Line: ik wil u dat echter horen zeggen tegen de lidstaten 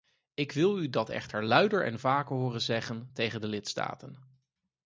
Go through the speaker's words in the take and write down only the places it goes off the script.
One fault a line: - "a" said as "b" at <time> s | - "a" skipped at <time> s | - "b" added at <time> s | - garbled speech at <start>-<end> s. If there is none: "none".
- "luider en vaker" added at 1.4 s